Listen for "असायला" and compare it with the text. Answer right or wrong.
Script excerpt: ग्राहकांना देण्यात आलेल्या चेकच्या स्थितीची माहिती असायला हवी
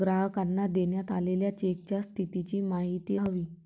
wrong